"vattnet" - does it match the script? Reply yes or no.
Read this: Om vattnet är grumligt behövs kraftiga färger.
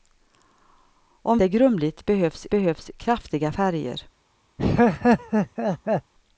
no